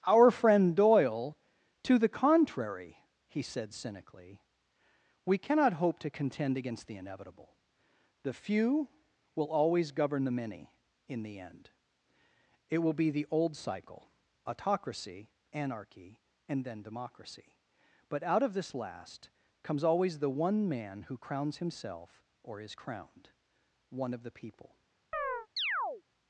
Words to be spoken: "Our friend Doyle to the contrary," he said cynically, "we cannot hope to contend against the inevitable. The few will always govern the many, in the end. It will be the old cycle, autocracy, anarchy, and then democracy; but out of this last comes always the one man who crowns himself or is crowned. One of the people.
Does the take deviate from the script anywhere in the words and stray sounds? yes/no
yes